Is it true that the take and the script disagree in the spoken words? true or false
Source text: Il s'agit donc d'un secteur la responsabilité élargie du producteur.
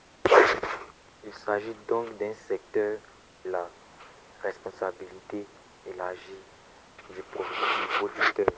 false